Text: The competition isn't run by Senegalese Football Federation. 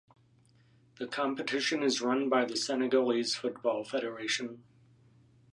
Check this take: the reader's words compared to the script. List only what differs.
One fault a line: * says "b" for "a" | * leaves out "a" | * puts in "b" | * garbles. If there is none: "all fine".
* says "is" for "isn't"
* puts in "the"